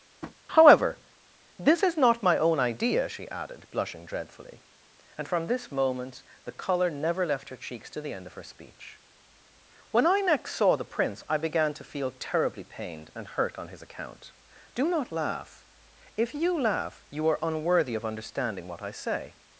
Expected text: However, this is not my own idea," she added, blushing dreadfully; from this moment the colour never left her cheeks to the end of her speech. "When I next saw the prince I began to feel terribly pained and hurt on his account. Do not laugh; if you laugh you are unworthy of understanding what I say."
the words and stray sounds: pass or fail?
fail